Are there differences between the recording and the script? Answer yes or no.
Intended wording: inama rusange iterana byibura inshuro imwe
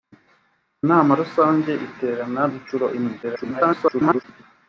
yes